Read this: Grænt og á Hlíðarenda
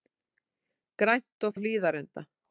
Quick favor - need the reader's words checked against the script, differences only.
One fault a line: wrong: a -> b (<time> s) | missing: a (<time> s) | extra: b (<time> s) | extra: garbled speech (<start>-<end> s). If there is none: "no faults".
no faults